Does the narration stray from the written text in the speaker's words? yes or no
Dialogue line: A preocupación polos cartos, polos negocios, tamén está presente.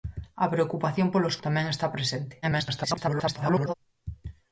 yes